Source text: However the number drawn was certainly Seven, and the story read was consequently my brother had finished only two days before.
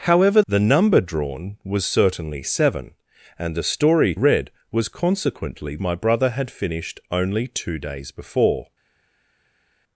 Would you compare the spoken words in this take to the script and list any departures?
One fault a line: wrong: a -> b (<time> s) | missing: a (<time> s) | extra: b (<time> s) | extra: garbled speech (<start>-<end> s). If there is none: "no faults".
no faults